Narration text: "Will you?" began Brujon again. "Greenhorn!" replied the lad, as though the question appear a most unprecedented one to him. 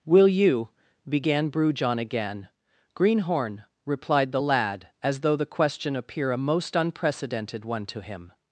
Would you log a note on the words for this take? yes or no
no